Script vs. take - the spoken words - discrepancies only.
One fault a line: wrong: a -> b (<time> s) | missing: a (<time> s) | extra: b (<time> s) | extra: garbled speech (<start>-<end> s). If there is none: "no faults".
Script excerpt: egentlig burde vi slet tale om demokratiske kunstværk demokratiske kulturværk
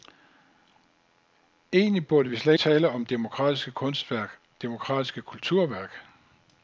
no faults